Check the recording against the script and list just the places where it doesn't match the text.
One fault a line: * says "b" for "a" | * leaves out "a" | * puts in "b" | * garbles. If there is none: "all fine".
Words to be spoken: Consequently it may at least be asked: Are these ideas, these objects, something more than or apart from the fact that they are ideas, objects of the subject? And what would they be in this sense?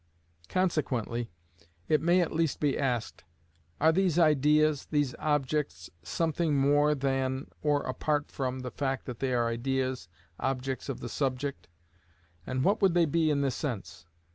all fine